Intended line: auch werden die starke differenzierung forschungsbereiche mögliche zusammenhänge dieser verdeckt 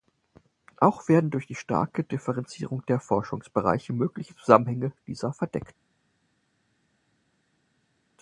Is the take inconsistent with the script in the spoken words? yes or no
yes